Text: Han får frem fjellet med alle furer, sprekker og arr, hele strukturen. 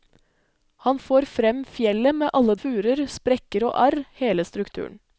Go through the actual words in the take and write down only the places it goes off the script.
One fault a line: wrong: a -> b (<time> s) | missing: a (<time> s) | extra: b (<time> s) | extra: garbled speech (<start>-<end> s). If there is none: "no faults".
no faults